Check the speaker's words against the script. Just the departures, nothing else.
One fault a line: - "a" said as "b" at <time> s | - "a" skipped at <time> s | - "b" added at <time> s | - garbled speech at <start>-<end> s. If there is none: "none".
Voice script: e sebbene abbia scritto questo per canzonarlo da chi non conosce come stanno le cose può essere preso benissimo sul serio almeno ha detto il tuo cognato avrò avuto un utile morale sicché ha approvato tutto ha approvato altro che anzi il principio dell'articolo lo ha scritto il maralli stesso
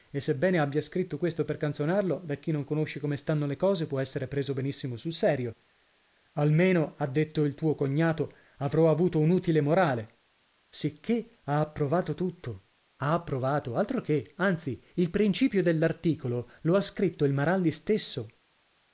none